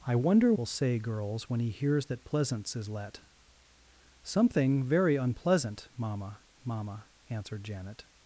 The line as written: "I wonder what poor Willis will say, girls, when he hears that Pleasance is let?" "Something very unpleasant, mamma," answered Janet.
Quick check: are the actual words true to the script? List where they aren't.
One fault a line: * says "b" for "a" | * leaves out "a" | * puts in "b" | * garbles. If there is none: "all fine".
* leaves out "what poor Willis"
* puts in "mamma"